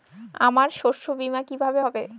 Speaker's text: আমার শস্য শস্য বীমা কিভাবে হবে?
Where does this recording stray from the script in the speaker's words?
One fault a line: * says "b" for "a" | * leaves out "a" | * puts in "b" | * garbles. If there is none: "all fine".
* leaves out "শস্য"